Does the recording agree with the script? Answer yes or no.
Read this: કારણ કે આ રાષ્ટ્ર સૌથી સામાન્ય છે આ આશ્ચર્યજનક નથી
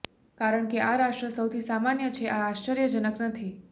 yes